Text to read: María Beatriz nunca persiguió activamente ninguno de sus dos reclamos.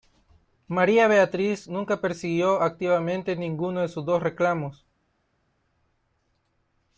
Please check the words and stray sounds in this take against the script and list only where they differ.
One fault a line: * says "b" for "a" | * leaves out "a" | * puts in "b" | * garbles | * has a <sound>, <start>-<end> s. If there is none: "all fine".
all fine